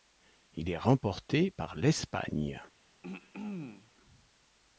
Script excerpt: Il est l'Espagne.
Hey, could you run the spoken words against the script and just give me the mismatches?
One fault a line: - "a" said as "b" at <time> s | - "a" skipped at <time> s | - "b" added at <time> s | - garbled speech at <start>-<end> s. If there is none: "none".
- "remporté par" added at 0.8 s